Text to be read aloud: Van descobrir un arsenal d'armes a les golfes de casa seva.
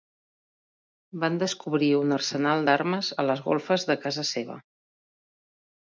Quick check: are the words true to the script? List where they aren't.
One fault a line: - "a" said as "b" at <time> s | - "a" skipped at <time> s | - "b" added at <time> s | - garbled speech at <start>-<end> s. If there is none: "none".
none